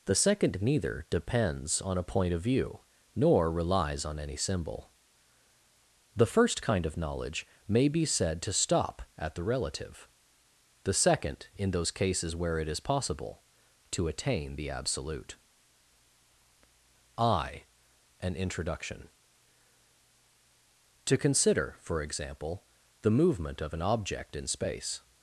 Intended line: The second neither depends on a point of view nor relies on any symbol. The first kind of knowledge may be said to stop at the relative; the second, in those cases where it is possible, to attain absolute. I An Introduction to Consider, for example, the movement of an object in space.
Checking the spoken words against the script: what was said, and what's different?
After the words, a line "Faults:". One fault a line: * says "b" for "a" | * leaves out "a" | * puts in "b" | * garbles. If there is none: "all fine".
The second neither depends on a point of view nor relies on any symbol. The first kind of knowledge may be said to stop at the relative; the second, in those cases where it is possible, to attain the absolute. I An Introduction to Consider, for example, the movement of an object in space.
Faults:
* puts in "the"